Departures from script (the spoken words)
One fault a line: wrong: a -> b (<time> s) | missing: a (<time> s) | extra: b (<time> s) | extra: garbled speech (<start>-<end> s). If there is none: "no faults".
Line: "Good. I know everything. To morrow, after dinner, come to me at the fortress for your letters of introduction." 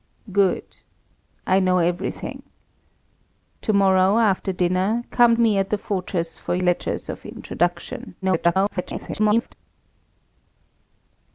missing: to (5.4 s)
missing: your (6.6 s)
extra: garbled speech (8.2-9.5 s)